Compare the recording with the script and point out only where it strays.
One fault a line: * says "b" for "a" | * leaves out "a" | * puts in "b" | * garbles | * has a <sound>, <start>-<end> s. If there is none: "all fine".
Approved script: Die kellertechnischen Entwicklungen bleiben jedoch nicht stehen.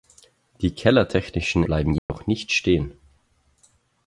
* leaves out "Entwicklungen"
* has a dropout, 2.0-2.1 s